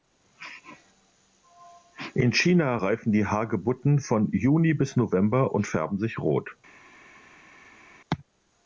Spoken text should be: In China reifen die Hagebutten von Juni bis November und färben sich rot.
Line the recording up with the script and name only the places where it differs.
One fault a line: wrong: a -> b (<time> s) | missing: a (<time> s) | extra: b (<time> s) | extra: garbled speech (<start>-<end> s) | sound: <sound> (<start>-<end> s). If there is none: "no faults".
no faults